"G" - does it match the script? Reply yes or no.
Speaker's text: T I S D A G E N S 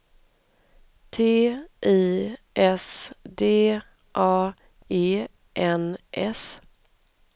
no